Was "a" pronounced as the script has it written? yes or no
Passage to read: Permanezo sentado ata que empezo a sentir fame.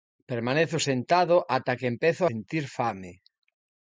no